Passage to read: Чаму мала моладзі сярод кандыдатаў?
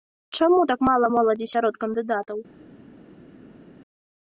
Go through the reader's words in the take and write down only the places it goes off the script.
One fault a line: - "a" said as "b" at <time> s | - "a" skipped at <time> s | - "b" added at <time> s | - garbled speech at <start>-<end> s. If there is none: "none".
- "так" added at 0.7 s